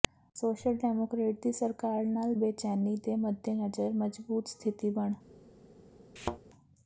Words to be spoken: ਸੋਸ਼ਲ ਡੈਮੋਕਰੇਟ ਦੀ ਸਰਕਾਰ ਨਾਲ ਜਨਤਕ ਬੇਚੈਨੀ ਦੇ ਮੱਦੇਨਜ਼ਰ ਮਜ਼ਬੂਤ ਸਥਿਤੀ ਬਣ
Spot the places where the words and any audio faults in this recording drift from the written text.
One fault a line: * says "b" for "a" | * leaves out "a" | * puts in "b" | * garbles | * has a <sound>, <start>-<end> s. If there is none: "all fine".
* leaves out "ਜਨਤਕ"
* has a thud, 6.2-6.4 s